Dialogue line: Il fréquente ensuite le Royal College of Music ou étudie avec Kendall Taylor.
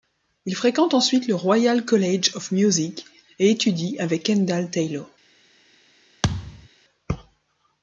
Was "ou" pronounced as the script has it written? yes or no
no